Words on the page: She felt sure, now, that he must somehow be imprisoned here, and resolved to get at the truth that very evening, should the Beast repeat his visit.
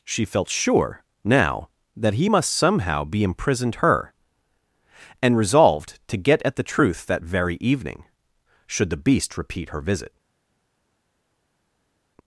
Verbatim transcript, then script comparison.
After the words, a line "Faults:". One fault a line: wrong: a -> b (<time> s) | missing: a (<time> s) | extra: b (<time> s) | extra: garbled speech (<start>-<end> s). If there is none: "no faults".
She felt sure, now, that he must somehow be imprisoned her, and resolved to get at the truth that very evening, should the Beast repeat her visit.
Faults:
wrong: here -> her (3.8 s)
wrong: his -> her (9.7 s)